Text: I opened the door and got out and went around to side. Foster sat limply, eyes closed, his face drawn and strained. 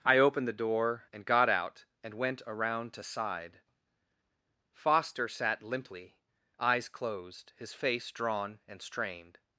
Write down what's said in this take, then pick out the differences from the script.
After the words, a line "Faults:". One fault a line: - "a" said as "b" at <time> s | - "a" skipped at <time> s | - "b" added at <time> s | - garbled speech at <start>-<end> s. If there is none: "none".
I opened the door and got out and went around to side. Foster sat limply, eyes closed, his face drawn and strained.
Faults:
none